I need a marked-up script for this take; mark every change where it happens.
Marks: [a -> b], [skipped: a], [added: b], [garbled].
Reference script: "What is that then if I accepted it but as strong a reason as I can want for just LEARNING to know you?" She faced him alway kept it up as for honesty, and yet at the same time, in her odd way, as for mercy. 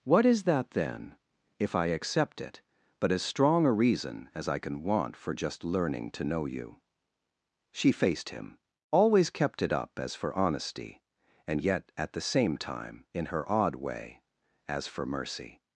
"What is that then if I [accepted -> accept] it but as strong a reason as I can want for just LEARNING to know you?" She faced him [alway -> always] kept it up as for honesty, and yet at the same time, in her odd way, as for mercy.